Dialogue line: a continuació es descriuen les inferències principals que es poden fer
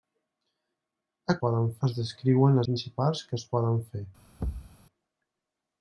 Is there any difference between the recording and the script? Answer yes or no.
yes